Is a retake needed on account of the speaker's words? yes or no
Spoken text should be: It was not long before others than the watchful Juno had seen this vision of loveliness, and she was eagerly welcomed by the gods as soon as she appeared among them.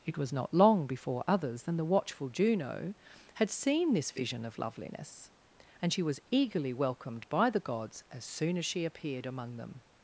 no